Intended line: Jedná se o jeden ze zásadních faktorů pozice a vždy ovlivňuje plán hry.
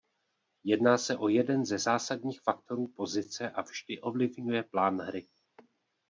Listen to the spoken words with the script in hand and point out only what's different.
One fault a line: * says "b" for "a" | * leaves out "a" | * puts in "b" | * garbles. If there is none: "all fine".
all fine